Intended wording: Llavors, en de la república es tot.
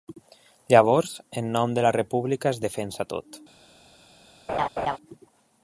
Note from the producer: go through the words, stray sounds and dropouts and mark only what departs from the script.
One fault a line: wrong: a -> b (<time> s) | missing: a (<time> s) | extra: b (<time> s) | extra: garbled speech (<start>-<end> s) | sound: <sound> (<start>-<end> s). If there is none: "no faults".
extra: nom (1.6 s)
extra: defensa (2.6 s)
sound: laugh (4.5-5.0 s)